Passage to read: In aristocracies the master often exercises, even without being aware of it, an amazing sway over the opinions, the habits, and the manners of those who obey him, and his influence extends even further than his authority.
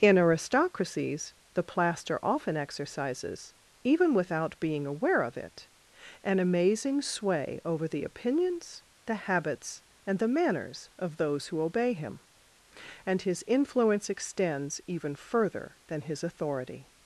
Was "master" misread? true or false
true